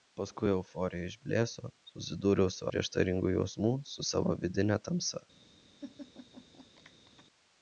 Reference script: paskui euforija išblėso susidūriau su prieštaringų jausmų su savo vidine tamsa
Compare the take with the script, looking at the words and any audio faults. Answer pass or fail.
fail